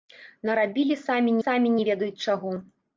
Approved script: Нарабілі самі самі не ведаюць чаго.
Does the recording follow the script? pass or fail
pass